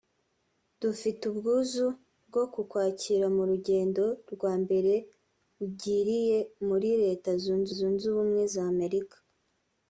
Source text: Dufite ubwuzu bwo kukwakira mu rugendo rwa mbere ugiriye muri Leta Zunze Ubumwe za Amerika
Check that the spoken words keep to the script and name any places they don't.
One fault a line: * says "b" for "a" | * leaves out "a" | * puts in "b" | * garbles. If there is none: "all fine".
* puts in "Zunze"